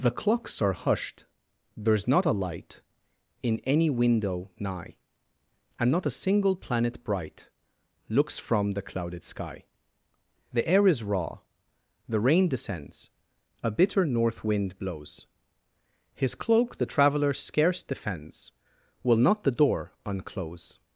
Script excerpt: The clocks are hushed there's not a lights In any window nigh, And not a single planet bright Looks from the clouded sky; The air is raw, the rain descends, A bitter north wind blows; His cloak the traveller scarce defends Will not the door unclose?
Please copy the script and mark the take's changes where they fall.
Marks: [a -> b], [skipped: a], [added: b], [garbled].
The clocks are hushed there's not a [lights -> light] In any window nigh, And not a single planet bright Looks from the clouded sky; The air is raw, the rain descends, A bitter north wind blows; His cloak the traveller scarce defends Will not the door unclose?